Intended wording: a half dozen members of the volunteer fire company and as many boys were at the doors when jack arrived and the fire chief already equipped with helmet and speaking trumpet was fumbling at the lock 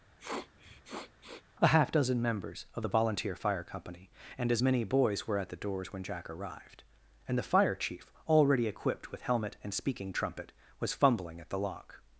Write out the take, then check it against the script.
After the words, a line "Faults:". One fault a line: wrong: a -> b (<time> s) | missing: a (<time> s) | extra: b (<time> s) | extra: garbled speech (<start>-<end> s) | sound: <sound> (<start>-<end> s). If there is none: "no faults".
a half dozen members of the volunteer fire company and as many boys were at the doors when jack arrived and the fire chief already equipped with helmet and speaking trumpet was fumbling at the lock
Faults:
sound: sniff (0.2-1.4 s)